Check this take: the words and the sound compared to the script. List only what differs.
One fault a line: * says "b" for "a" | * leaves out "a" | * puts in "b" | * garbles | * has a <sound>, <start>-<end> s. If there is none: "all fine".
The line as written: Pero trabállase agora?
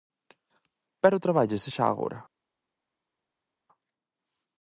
* puts in "xa"